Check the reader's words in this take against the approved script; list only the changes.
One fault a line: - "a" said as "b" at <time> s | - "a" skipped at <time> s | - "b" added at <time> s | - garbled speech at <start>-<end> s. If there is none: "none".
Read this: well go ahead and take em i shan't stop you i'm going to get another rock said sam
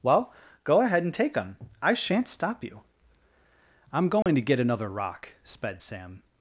- "said" said as "sped" at 5.4 s